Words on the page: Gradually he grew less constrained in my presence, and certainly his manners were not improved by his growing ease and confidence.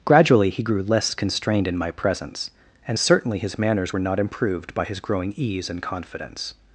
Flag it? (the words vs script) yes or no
no